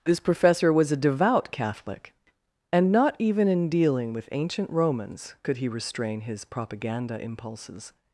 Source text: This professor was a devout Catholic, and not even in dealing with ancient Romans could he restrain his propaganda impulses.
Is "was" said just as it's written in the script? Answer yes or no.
yes